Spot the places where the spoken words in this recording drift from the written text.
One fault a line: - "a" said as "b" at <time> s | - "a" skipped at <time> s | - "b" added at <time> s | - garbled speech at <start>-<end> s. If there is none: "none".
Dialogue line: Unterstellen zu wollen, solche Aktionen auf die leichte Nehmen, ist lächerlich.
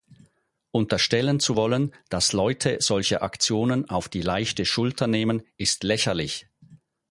- "dass Leute" added at 2.1 s
- "Schulter" added at 4.6 s